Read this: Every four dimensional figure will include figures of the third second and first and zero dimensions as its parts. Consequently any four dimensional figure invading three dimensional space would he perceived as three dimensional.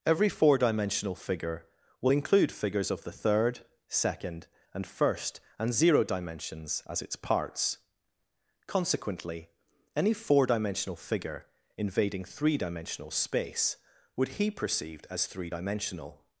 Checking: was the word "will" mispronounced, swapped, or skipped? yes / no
no